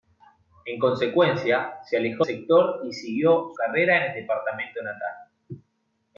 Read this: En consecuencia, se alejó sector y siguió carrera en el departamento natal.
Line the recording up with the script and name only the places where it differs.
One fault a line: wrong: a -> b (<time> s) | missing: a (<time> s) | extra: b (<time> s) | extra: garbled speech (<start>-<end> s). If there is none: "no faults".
no faults